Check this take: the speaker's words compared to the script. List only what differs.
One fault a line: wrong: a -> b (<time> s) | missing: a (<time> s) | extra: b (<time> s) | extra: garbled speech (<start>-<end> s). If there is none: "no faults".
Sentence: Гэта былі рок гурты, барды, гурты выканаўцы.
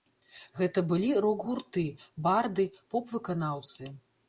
wrong: гурты -> поп (3.0 s)